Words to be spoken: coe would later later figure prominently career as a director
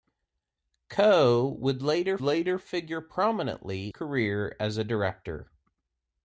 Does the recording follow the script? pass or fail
pass